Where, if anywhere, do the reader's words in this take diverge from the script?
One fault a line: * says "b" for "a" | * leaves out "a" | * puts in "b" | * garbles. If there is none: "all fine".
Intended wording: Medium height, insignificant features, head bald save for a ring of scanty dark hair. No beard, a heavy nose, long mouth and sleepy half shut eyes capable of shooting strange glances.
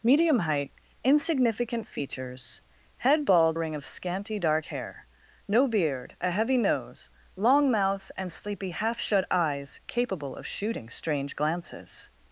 * leaves out "save for"